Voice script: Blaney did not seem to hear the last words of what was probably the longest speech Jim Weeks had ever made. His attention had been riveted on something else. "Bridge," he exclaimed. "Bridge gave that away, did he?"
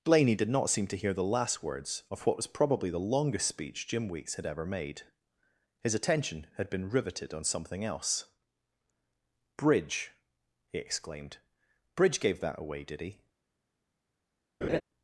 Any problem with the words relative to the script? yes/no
no